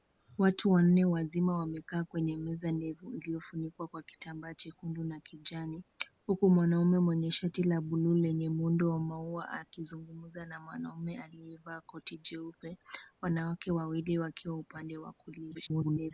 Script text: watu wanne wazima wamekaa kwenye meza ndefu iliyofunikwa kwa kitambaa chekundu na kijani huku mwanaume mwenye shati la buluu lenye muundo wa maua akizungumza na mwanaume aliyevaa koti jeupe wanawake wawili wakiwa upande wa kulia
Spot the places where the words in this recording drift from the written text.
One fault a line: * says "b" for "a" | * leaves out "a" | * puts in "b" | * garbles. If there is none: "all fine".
* garbles